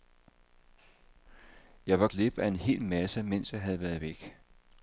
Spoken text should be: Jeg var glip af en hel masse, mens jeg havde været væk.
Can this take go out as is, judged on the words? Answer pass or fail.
pass